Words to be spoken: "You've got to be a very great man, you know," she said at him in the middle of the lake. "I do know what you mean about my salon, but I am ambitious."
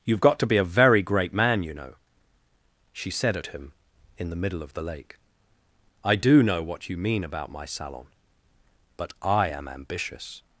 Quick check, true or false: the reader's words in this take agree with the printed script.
true